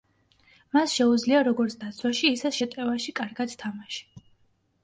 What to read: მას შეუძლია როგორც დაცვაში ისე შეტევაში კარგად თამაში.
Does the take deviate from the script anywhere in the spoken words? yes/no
no